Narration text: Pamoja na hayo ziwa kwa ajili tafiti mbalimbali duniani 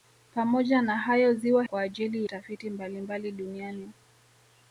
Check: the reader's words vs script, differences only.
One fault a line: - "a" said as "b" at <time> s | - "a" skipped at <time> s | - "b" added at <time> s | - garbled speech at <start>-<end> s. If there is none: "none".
none